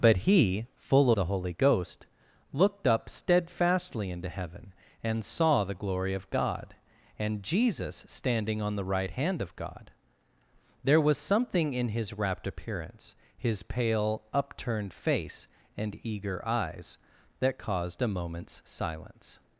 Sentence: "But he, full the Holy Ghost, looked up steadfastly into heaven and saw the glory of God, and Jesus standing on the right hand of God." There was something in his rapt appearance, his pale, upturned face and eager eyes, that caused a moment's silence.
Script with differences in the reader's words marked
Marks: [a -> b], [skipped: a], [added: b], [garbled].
"But he, full the Holy Ghost, looked up steadfastly into heaven and saw the glory of God, and Jesus standing on the right hand of God." There was something in his rapt appearance, his pale, upturned face and eager eyes, that caused a moment's silence.